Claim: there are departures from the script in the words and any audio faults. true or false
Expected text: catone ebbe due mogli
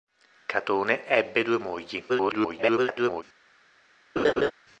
true